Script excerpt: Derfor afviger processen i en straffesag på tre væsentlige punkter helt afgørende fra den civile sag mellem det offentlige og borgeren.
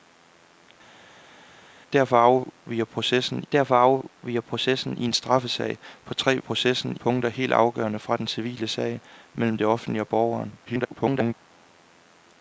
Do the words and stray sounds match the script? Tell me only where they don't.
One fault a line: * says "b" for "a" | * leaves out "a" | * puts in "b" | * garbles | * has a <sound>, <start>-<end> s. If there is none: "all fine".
* puts in "derfor afviger processen"
* says "processen" for "væsentlige"
* garbles